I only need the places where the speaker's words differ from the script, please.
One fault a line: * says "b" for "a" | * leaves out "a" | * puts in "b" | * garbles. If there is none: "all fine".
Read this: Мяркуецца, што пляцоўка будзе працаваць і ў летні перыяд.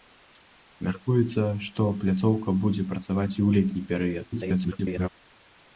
* garbles